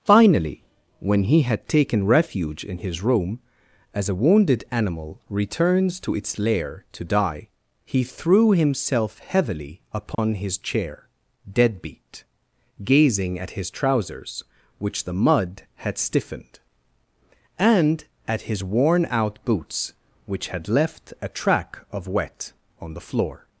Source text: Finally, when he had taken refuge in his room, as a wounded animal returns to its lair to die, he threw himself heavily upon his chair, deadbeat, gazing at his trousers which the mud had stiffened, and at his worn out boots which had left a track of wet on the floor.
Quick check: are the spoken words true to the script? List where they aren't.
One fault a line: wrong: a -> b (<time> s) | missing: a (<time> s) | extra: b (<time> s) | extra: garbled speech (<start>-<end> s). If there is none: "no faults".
no faults